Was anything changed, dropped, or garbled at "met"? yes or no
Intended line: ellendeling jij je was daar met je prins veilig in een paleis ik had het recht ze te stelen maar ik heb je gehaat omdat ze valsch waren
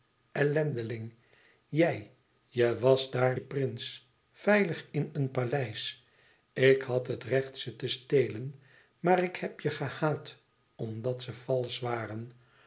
yes